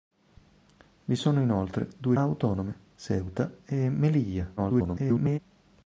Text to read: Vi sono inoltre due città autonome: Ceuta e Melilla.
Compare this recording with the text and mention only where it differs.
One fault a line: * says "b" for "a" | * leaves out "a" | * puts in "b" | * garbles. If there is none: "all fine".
* leaves out "città"
* garbles